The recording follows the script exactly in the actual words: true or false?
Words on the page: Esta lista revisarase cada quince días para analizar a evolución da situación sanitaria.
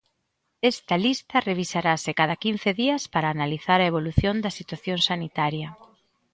true